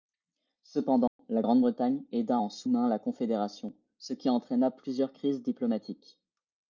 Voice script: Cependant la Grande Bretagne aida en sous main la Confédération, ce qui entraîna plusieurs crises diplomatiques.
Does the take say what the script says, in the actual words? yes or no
yes